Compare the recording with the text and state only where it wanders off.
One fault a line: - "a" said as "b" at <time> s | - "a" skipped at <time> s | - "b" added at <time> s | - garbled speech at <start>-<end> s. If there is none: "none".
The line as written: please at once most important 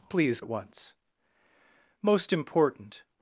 none